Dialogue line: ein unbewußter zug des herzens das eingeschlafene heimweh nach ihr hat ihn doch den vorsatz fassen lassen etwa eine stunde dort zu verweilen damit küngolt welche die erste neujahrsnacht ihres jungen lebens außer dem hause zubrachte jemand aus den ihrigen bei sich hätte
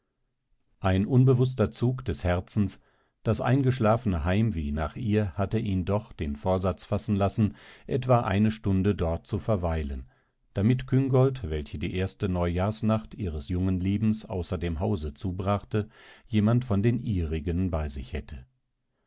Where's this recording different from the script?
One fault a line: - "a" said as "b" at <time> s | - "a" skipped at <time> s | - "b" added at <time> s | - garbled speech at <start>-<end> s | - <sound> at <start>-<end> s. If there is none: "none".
- "hat" said as "hatte" at 5.3 s
- "aus" said as "von" at 16.6 s